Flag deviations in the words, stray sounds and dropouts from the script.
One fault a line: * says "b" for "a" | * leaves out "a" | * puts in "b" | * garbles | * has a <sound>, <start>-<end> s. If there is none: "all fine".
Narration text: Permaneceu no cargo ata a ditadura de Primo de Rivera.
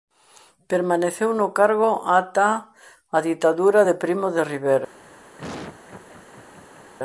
* has a laugh, 5.4-6.9 s